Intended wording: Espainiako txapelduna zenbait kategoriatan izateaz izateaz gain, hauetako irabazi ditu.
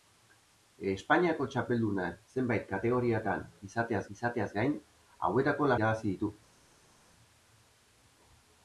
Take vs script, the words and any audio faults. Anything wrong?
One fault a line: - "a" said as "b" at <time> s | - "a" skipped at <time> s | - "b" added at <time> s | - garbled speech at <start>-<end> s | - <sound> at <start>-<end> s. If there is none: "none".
none